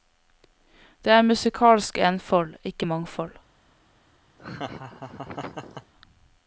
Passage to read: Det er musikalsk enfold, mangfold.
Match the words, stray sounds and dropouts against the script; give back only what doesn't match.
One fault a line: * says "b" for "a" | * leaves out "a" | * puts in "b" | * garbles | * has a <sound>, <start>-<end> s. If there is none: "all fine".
* puts in "ikke"
* has a laugh, 4.4-5.9 s